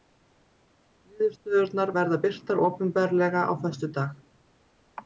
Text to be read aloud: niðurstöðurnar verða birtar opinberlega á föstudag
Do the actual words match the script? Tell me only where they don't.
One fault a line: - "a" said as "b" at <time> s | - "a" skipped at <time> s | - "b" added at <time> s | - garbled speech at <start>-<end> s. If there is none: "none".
none